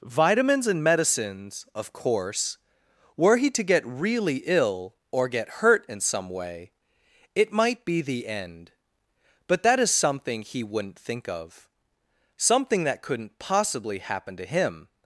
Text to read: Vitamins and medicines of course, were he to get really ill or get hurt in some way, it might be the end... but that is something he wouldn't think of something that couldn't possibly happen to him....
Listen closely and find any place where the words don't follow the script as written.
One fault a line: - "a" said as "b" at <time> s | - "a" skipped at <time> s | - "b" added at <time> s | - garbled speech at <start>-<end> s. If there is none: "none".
none